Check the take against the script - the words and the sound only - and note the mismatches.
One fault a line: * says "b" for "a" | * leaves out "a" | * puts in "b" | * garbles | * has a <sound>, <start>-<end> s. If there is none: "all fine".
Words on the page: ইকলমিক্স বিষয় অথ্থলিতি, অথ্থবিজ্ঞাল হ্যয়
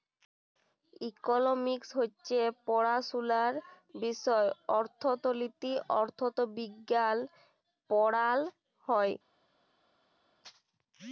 * puts in "হছে পড়াশুলার"
* puts in "পড়াল"